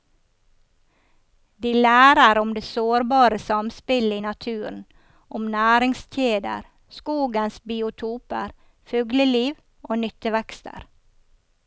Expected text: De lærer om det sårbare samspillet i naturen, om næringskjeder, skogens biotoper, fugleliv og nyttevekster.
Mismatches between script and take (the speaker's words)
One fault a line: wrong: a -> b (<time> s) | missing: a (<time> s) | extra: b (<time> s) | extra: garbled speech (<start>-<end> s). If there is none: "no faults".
no faults